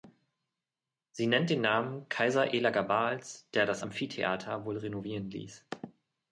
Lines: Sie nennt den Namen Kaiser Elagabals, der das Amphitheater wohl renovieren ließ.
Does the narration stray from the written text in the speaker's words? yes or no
no